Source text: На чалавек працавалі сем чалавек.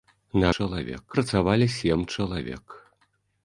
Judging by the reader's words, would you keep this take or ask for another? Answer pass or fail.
pass